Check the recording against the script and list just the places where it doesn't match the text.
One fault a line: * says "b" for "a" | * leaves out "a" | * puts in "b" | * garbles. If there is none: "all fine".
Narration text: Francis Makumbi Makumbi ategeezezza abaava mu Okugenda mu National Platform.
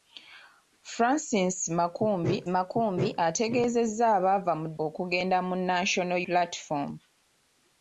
all fine